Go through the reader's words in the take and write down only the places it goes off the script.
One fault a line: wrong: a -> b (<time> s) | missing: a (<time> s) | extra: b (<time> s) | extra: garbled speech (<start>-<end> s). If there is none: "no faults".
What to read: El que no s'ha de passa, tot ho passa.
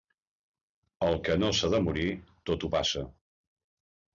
wrong: passa -> morir (1.9 s)